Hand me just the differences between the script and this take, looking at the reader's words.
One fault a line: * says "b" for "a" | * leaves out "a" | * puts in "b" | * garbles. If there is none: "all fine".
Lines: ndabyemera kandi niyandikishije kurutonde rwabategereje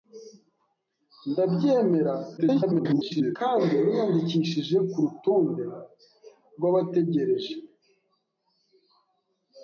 * garbles